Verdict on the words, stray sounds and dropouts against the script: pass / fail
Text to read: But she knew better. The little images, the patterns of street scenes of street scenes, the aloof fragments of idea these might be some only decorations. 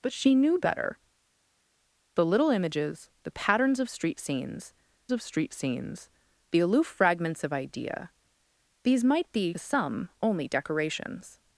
pass